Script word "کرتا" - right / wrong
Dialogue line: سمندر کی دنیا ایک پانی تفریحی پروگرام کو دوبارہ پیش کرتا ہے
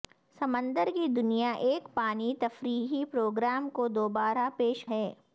wrong